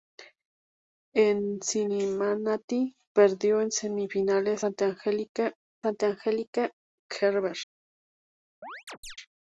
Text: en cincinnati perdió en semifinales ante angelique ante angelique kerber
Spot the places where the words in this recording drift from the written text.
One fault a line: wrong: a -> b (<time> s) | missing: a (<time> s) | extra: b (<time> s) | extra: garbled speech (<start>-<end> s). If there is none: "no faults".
no faults